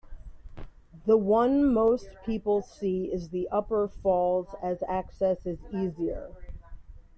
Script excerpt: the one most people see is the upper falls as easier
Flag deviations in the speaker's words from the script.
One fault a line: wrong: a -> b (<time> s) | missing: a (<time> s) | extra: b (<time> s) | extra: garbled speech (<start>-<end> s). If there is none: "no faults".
extra: access is (4.9 s)